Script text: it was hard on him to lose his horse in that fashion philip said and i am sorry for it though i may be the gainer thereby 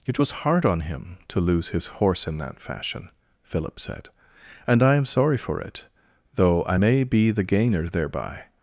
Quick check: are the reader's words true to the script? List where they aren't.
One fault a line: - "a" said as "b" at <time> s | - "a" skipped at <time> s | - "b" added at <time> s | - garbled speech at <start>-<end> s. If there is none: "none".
none